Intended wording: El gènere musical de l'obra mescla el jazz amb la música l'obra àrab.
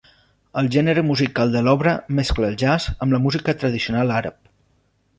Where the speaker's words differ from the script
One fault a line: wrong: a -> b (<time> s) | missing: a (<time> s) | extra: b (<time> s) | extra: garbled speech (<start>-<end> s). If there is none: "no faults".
wrong: l'obra -> tradicional (3.6 s)